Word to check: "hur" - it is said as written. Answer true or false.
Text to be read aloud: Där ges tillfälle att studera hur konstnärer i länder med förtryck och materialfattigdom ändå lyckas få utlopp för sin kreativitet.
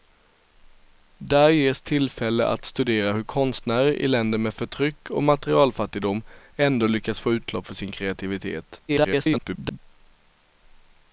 true